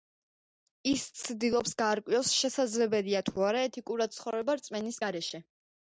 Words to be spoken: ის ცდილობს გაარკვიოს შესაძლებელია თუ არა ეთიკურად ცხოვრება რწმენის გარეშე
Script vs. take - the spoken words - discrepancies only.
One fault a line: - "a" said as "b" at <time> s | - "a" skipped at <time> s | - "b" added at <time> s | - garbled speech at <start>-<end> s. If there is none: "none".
none